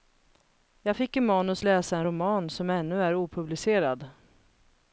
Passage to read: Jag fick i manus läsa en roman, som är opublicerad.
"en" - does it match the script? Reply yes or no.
yes